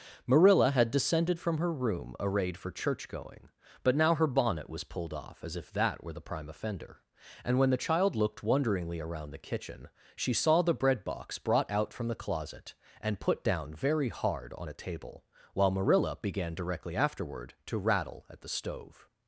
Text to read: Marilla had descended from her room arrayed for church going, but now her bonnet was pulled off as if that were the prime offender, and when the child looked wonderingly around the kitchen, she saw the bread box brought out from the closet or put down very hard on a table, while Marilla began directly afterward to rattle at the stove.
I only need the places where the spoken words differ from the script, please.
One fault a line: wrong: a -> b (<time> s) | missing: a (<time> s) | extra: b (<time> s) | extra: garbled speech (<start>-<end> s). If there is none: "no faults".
wrong: or -> and (13.0 s)